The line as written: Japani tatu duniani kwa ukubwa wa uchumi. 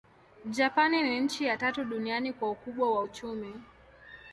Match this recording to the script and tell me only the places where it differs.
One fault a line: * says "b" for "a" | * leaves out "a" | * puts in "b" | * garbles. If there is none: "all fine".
* puts in "ni nchi ya"